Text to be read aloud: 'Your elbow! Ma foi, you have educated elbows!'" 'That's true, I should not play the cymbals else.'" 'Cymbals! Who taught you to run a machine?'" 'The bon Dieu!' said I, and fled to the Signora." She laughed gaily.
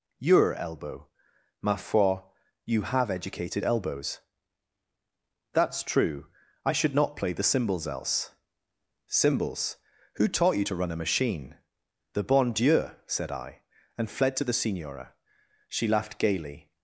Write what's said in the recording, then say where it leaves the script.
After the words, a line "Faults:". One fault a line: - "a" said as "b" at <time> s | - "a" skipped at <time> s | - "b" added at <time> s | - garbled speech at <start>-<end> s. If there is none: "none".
'Your elbow! Ma foi, you have educated elbows!'" 'That's true, I should not play the cymbals else.'" 'Cymbals! Who taught you to run a machine?'" 'The bon Dieu!' said I, and fled to the Signora." She laughed gaily.
Faults:
none